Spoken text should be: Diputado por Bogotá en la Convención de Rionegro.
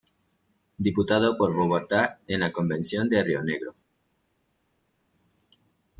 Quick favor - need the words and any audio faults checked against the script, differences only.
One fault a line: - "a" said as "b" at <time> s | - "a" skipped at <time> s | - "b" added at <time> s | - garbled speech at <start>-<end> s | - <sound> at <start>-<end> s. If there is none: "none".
none